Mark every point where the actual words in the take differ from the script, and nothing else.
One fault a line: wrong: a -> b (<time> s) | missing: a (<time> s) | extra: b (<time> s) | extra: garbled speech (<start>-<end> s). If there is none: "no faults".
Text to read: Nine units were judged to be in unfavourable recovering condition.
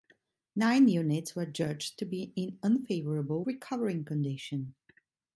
no faults